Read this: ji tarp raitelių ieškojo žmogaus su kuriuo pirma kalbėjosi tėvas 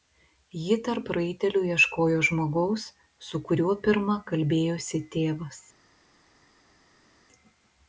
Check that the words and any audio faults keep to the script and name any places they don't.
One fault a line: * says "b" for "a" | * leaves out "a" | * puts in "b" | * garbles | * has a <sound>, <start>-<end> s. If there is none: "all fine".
all fine